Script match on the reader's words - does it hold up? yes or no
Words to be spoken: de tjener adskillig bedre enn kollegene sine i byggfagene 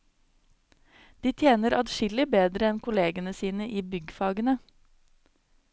yes